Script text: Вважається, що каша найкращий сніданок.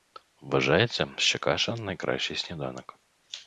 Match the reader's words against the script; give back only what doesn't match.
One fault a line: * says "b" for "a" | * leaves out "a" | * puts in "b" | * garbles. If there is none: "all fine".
all fine